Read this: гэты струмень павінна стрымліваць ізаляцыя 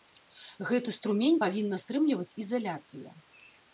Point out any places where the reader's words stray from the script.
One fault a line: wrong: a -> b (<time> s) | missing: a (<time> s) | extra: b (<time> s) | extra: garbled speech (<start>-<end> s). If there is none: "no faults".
no faults